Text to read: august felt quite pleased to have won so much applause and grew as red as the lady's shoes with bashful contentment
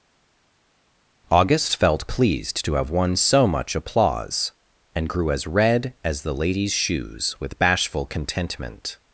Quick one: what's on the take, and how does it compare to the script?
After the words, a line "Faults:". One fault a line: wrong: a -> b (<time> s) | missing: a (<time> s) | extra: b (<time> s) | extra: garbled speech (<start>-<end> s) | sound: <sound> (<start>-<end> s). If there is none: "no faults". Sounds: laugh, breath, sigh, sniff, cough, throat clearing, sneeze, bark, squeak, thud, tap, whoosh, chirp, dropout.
august felt pleased to have won so much applause and grew as red as the lady's shoes with bashful contentment
Faults:
missing: quite (2.0 s)